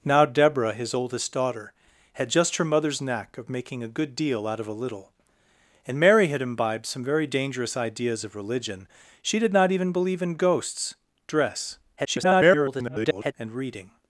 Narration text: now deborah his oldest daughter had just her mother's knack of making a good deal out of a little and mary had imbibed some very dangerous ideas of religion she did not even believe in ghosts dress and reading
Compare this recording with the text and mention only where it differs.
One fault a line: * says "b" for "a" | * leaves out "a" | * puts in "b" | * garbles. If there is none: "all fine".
* garbles